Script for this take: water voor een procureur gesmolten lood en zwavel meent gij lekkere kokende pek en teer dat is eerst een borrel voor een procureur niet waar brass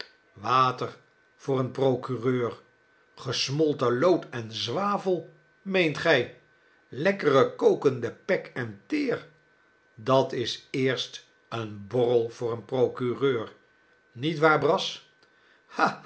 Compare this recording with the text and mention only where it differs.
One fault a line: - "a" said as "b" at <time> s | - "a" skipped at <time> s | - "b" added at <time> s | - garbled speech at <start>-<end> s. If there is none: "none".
none